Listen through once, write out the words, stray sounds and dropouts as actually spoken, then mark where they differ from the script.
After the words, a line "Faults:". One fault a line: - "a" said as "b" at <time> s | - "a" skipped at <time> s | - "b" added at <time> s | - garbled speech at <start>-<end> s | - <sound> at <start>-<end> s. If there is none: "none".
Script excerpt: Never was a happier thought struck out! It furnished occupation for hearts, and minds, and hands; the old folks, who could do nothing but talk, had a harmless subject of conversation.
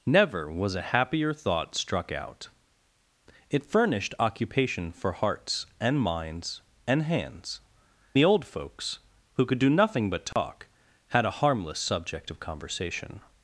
Never was a happier thought struck out! It furnished occupation for hearts, and minds, and hands; the old folks, who could do nothing but talk, had a harmless subject of conversation.
Faults:
- dropout at 10.3-10.4 s